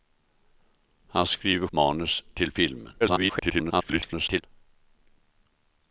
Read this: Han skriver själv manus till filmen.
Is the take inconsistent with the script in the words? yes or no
yes